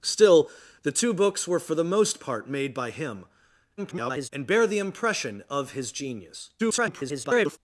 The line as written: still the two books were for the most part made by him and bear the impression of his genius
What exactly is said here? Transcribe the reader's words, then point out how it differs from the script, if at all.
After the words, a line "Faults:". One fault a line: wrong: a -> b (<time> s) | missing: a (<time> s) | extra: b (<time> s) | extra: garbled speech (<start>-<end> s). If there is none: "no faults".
still the two books were for the most part made by him [garbled] and bear the impression of his genius [garbled]
Faults:
extra: garbled speech (3.8-4.3 s)
extra: garbled speech (6.6-7.6 s)